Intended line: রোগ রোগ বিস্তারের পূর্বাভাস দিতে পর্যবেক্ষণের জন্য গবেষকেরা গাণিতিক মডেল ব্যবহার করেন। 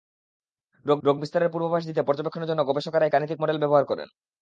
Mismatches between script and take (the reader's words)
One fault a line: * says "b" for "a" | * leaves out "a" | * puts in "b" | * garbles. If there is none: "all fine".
all fine